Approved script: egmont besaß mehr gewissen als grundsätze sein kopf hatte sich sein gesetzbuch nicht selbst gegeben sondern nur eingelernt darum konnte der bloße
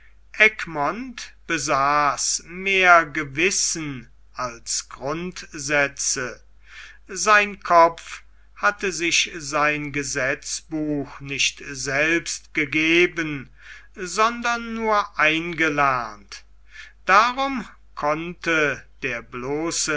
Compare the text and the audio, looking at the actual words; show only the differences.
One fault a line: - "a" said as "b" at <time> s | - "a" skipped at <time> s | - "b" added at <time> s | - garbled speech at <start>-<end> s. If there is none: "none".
none